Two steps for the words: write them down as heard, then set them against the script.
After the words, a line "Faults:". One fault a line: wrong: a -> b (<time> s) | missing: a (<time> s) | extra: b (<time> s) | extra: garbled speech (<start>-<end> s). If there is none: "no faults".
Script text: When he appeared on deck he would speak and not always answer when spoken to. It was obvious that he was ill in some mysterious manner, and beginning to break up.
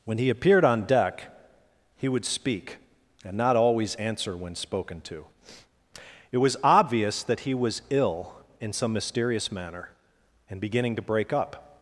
When he appeared on deck he would speak and not always answer when spoken to. It was obvious that he was ill in some mysterious manner, and beginning to break up.
Faults:
no faults